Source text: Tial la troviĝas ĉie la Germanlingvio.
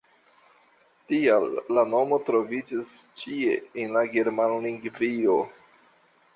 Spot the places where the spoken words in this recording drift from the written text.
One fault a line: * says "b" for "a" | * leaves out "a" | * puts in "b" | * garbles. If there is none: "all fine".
* puts in "nomo"
* puts in "en"